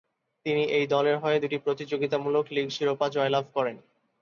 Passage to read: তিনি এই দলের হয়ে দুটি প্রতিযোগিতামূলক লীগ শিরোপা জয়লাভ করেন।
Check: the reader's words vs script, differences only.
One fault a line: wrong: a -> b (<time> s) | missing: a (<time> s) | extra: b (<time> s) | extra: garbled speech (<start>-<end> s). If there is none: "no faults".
no faults